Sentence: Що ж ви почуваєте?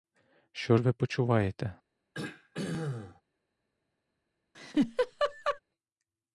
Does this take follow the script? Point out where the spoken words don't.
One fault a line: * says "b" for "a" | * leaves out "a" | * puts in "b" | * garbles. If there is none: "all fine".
all fine